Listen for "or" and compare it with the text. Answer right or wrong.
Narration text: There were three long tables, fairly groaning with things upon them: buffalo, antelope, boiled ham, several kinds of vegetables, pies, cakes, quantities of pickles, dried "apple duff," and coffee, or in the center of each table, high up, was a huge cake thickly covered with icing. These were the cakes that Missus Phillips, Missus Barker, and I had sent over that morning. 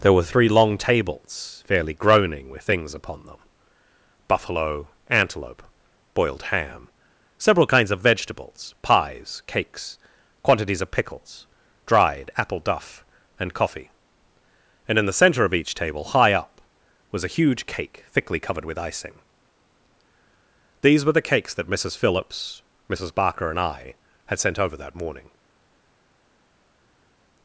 wrong